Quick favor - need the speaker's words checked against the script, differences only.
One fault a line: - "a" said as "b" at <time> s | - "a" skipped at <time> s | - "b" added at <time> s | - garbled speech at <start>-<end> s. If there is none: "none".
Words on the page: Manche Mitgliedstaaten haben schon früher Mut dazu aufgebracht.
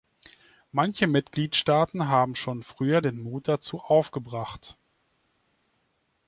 - "den" added at 3.0 s